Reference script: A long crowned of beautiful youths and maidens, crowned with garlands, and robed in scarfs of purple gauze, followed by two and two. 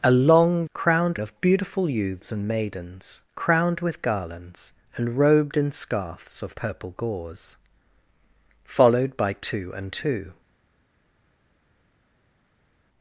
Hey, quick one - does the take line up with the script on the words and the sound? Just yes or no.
yes